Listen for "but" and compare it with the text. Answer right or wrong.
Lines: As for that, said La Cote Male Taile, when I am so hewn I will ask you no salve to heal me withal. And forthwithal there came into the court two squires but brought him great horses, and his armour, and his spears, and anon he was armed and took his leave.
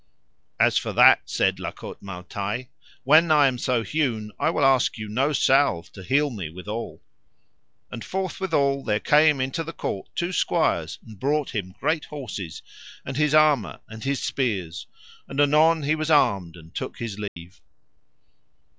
wrong